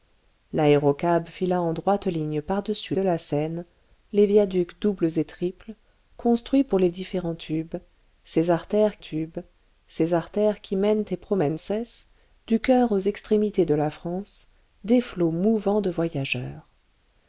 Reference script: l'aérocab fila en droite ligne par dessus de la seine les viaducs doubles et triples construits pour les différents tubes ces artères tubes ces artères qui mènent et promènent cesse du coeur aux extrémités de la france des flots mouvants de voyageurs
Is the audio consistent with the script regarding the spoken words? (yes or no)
yes